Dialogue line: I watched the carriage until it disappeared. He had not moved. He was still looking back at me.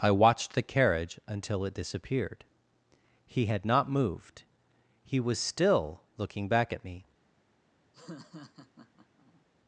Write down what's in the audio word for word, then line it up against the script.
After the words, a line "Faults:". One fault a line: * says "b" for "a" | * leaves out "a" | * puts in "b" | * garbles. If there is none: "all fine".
I watched the carriage until it disappeared. He had not moved. He was still looking back at me.
Faults:
all fine